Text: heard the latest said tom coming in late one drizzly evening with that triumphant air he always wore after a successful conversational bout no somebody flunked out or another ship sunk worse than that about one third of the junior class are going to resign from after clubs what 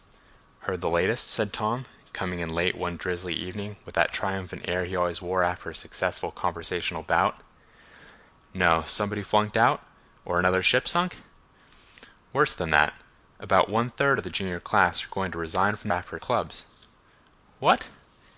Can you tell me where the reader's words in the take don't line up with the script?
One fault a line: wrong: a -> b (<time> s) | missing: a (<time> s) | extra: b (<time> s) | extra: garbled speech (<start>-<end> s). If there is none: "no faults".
no faults